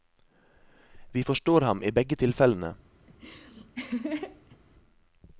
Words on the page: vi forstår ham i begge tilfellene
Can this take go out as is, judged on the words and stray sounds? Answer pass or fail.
fail